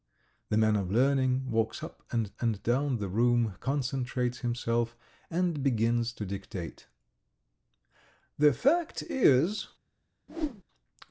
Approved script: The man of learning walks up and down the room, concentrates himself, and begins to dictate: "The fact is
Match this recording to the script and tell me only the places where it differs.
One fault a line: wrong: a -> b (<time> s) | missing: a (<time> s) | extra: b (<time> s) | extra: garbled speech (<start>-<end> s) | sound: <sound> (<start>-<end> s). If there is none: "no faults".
extra: and (2.4 s)
sound: whoosh (10.3-10.6 s)